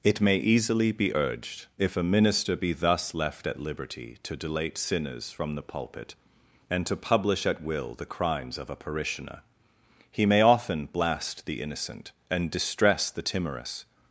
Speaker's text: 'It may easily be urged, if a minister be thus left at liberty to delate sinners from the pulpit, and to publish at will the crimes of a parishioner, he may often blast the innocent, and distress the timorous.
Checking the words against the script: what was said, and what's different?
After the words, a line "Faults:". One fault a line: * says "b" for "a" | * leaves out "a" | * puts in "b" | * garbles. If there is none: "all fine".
'It may easily be urged, if a minister be thus left at liberty to delate sinners from the pulpit, and to publish at will the crimes of a parishioner, he may often blast the innocent, and distress the timorous.
Faults:
all fine